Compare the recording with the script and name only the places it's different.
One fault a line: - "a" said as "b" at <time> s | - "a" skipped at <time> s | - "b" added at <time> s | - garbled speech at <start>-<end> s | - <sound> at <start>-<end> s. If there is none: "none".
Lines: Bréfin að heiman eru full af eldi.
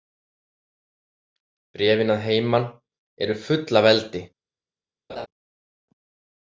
- laugh at 5.1-5.3 s